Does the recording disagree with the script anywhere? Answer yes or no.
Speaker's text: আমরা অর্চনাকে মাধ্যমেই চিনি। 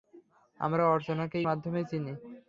no